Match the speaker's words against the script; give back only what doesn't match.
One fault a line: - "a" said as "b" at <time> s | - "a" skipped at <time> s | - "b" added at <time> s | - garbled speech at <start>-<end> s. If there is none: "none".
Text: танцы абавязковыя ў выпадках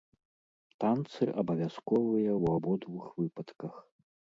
- "абодвух" added at 2.6 s